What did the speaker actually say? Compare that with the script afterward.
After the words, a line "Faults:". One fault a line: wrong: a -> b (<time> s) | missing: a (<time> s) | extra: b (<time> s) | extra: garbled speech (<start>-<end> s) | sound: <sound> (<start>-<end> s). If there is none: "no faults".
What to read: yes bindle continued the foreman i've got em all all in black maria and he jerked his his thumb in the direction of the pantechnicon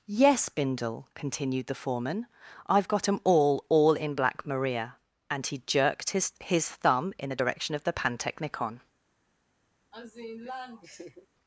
yes bindle continued the foreman i've got em all all in black maria and he jerked his his thumb in the direction of the pantechnicon
Faults:
sound: laugh (9.9-11.3 s)